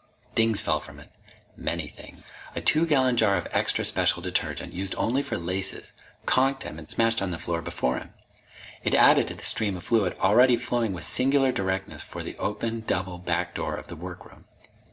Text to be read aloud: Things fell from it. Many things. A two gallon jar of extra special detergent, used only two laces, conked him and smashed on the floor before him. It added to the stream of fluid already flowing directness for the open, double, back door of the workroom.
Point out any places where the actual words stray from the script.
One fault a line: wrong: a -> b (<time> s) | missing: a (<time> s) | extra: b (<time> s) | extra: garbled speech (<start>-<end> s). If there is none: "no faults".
wrong: two -> for (5.2 s)
extra: with singular (10.9 s)